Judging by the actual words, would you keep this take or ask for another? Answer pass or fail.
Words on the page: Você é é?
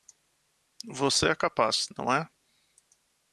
fail